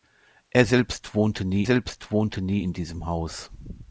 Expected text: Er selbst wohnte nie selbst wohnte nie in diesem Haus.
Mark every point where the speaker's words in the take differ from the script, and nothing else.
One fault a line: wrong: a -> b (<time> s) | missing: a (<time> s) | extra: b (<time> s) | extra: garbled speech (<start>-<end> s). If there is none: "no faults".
no faults